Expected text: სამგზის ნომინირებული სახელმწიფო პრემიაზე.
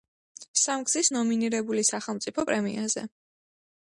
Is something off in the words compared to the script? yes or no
no